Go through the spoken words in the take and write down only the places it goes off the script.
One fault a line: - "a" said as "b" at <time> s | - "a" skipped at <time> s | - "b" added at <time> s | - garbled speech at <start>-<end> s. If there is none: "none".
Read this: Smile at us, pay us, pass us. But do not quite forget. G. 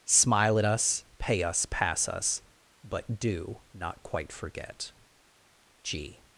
none